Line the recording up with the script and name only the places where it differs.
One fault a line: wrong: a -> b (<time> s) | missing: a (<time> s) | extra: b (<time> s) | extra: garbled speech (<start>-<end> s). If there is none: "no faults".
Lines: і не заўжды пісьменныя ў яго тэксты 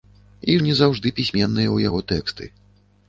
no faults